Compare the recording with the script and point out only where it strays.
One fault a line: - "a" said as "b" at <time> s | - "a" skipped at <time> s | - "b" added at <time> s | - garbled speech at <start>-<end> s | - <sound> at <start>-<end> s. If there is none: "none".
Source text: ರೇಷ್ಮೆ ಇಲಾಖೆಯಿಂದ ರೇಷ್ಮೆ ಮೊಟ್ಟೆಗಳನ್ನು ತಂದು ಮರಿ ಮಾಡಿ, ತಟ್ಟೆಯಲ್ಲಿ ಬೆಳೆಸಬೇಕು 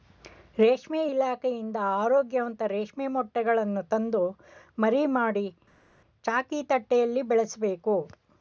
- "ಆರೋಗ್ಯವಂತ" added at 2.0 s
- "ಚಾಕಿ" added at 6.2 s